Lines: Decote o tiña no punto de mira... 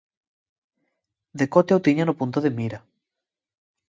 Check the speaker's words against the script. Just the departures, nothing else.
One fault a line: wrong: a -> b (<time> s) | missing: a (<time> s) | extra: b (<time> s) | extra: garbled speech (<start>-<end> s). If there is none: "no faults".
no faults